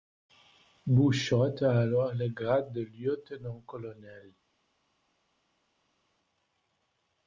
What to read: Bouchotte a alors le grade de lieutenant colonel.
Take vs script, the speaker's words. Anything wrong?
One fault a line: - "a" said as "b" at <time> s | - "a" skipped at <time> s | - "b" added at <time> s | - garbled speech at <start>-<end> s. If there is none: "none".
none